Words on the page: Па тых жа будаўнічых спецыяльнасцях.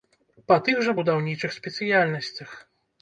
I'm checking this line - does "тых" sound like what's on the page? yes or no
yes